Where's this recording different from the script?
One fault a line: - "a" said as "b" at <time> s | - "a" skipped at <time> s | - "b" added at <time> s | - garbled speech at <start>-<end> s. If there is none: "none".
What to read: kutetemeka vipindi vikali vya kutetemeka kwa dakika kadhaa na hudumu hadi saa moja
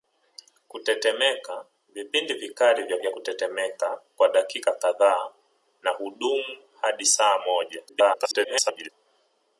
- "vya" added at 3.0 s
- garbled speech at 7.9-8.9 s